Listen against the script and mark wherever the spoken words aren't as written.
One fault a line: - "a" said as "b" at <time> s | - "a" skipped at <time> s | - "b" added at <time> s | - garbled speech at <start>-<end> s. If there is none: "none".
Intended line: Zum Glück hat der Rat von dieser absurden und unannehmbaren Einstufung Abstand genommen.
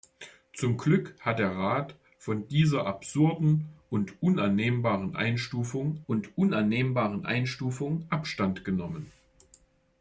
- "und unannehmbaren Einstufung" added at 6.1 s